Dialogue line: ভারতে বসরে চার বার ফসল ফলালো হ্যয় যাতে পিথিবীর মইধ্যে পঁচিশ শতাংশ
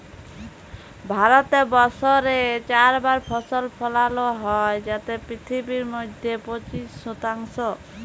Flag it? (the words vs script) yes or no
no